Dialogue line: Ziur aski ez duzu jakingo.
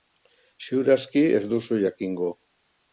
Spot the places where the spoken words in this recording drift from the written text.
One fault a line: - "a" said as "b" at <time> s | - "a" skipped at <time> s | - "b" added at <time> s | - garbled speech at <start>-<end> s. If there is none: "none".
none